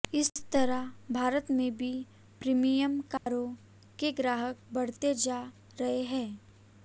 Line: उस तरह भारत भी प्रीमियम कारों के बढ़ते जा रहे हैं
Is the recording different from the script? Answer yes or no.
yes